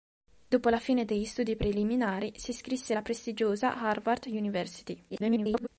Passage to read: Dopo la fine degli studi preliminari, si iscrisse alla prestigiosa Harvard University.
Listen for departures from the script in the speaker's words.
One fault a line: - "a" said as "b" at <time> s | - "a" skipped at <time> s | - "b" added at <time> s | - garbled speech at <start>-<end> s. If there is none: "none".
- garbled speech at 5.1-5.7 s